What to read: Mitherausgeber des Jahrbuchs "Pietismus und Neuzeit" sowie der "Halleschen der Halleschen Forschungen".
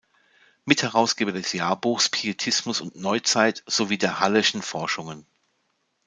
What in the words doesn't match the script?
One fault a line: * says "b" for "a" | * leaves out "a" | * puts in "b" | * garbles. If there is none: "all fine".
* leaves out "der Halleschen"